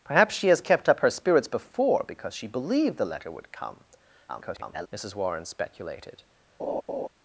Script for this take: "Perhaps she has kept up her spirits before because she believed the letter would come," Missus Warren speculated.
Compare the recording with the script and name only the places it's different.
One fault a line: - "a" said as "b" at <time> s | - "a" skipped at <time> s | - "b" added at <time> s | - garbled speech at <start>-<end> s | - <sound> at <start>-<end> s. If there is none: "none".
- garbled speech at 4.3-4.9 s
- laugh at 6.6-7.1 s